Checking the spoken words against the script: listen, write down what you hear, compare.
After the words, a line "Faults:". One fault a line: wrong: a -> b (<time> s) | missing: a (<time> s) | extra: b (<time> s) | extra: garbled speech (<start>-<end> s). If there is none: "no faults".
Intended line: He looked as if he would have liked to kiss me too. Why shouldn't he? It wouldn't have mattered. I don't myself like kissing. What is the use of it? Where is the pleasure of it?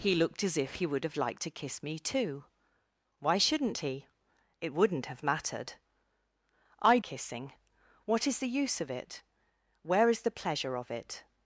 He looked as if he would have liked to kiss me too. Why shouldn't he? It wouldn't have mattered. I kissing. What is the use of it? Where is the pleasure of it?
Faults:
missing: don't myself like (7.0 s)